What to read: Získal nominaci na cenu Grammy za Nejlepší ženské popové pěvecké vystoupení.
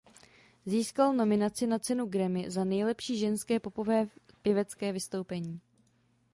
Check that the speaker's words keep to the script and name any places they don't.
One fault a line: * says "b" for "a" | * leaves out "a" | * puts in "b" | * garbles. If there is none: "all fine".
all fine